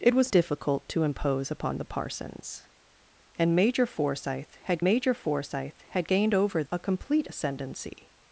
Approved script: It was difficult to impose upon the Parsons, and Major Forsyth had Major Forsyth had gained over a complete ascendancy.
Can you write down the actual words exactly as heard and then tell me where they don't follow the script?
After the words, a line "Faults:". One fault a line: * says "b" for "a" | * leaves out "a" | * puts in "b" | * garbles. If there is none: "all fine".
It was difficult to impose upon the Parsons, and Major Forsyth had Major Forsyth had gained over a complete ascendancy.
Faults:
all fine